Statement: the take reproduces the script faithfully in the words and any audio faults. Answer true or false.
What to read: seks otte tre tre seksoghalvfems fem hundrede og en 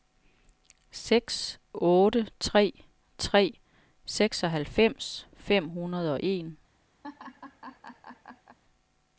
false